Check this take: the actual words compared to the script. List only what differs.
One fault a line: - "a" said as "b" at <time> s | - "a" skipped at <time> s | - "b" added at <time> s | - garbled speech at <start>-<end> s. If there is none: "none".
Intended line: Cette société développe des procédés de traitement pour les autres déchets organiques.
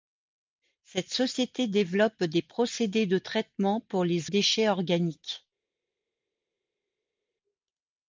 - "autres" skipped at 4.3 s